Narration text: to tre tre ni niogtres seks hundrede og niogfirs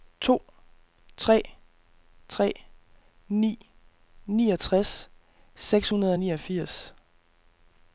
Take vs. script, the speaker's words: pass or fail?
pass